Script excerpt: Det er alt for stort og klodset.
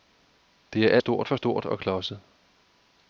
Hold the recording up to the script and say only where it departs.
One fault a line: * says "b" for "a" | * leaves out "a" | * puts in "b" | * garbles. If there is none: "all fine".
* says "stort" for "alt"